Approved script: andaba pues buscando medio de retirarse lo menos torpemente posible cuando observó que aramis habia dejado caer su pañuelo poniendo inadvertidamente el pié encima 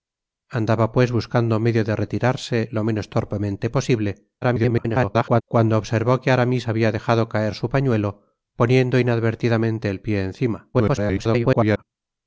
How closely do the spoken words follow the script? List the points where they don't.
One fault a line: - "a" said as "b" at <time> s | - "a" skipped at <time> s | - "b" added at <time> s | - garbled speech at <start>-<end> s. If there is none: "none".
- garbled speech at 4.4-5.4 s
- garbled speech at 10.7-11.8 s